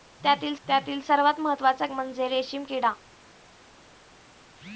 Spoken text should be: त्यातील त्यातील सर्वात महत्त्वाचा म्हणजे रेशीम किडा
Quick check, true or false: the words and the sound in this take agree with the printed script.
true